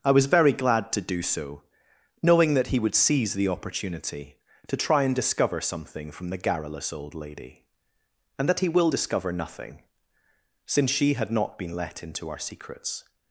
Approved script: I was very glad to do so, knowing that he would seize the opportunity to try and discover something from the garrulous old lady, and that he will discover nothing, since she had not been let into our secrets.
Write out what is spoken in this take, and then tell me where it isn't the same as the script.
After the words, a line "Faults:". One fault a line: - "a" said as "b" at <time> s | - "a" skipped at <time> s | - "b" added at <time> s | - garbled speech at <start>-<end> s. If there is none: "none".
I was very glad to do so, knowing that he would seize the opportunity to try and discover something from the garrulous old lady, and that he will discover nothing, since she had not been let into our secrets.
Faults:
none